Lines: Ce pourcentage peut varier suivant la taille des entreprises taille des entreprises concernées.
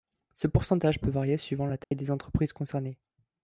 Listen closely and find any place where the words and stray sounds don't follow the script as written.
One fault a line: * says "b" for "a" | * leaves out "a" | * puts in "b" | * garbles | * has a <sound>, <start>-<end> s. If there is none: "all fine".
* has a dropout, 1.8-1.9 s
* leaves out "taille des entreprises"